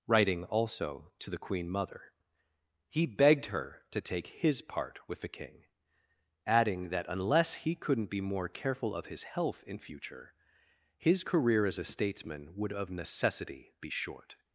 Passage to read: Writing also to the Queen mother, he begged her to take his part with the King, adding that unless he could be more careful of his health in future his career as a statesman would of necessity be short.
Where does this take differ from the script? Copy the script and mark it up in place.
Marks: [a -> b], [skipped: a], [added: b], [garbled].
Writing also to the Queen mother, he begged her to take his part with the King, adding that unless he [could -> couldn't] be more careful of his health in future his career as a statesman would of necessity be short.